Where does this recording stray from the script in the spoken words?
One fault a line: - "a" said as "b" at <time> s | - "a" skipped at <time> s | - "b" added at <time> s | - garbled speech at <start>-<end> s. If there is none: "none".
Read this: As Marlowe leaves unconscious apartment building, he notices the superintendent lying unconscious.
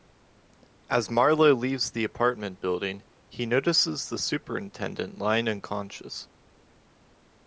- "unconscious" said as "the" at 1.9 s